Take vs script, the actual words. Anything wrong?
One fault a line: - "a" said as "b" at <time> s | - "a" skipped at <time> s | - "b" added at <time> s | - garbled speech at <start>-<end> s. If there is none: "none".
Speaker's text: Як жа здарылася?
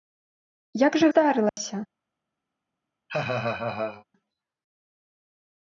none